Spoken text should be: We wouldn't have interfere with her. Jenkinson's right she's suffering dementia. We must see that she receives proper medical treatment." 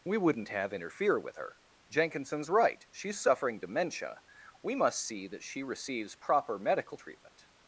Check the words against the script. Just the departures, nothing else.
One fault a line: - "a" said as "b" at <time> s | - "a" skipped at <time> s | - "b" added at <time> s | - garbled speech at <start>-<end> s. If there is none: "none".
none